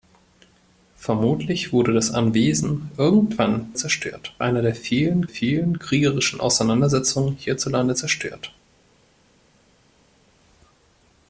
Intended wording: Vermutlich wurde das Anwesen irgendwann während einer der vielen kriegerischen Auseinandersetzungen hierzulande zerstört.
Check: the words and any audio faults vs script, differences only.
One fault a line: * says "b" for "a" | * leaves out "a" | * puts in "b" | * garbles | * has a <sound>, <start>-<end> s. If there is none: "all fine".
* says "zerstört" for "während"
* puts in "vielen"